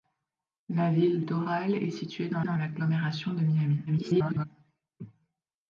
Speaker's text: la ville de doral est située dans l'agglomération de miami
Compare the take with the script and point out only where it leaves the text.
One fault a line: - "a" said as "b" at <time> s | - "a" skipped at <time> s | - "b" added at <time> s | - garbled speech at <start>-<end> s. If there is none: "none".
- "de" skipped at 1.2 s
- "dans" added at 2.4 s
- garbled speech at 3.9-4.5 s